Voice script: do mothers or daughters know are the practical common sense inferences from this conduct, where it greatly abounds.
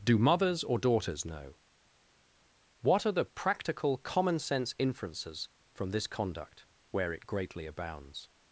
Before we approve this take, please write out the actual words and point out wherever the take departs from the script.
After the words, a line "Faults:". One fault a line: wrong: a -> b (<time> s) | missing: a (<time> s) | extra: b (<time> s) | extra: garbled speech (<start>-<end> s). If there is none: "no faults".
do mothers or daughters know what are the practical common sense inferences from this conduct, where it greatly abounds.
Faults:
extra: what (2.8 s)